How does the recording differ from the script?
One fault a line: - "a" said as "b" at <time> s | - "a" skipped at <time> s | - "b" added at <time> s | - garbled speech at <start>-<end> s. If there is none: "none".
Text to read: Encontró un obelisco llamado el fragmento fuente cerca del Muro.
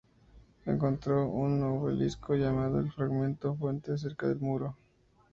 none